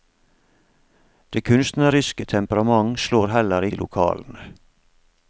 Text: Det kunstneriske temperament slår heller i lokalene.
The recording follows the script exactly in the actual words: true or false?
true